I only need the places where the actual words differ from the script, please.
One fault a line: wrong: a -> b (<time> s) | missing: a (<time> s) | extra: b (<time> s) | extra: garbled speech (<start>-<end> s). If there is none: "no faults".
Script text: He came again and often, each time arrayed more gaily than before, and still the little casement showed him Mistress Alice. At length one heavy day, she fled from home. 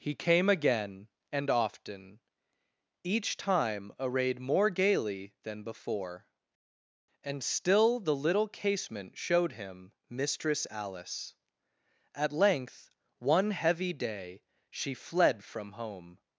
no faults